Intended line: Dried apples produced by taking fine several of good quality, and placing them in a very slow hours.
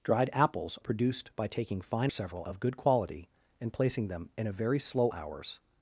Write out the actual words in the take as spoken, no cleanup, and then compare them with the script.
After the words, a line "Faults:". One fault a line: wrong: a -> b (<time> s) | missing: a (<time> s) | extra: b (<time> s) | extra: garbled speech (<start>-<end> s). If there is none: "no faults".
Dried apples produced by taking fine several of good quality, and placing them in a very slow hours.
Faults:
no faults